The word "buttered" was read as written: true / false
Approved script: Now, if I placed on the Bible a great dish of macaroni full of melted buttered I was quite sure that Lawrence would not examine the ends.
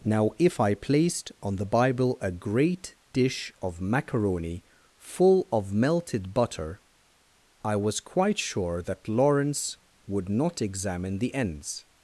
false